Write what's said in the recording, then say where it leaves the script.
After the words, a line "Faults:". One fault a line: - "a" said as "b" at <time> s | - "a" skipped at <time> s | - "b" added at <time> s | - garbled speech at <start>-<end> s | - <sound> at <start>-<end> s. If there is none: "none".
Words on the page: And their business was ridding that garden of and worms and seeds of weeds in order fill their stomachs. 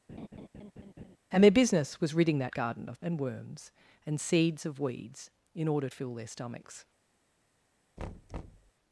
And their business was ridding that garden of and worms and seeds of weeds in order fill their stomachs.
Faults:
- laugh at 0.1-1.2 s
- thud at 8.0-8.7 s